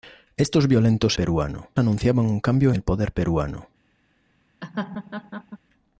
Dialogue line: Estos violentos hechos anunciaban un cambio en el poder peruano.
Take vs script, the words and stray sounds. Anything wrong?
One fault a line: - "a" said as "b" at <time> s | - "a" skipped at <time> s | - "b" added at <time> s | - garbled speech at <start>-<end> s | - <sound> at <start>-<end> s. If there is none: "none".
- "hechos" said as "peruano" at 1.1 s
- "en" skipped at 2.7 s
- laugh at 4.6-5.6 s